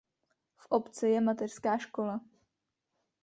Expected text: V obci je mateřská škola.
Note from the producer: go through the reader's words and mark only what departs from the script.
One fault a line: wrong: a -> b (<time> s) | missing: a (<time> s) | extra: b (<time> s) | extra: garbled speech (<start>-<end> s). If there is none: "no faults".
no faults